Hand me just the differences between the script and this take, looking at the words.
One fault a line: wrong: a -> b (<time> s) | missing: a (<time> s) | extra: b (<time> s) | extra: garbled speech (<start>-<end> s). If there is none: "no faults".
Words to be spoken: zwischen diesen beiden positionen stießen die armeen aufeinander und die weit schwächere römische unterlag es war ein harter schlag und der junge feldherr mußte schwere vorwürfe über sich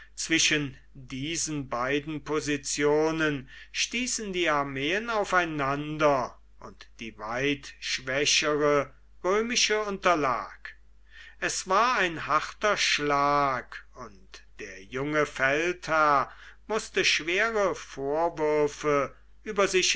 no faults